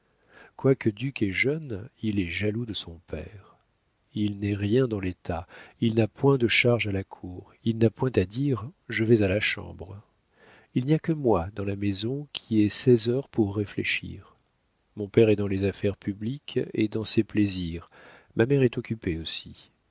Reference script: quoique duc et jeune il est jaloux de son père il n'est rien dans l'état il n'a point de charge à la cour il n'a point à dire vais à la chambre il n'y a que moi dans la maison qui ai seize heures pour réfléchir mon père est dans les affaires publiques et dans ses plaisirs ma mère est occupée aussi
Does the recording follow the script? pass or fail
fail